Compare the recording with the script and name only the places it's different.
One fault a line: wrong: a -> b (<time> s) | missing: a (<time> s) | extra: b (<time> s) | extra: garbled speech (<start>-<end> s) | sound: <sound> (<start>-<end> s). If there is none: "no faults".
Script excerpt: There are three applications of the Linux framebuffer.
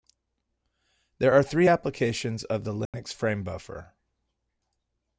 sound: dropout (2.9-2.9 s)